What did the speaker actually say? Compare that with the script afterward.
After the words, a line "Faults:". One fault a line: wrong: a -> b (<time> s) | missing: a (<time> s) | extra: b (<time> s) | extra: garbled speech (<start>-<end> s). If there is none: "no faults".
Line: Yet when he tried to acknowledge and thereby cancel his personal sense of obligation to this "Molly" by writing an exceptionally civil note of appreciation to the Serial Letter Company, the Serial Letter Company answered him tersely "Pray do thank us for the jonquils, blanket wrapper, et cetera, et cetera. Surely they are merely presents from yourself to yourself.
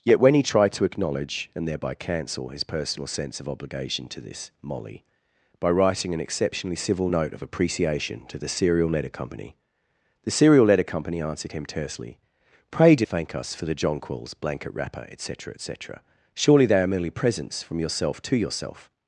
Yet when he tried to acknowledge and thereby cancel his personal sense of obligation to this "Molly" by writing an exceptionally civil note of appreciation to the Serial Letter Company, the Serial Letter Company answered him tersely "Pray do thank us for the jonquils, blanket wrapper, et cetera, et cetera. Surely they are merely presents from yourself to yourself.
Faults:
no faults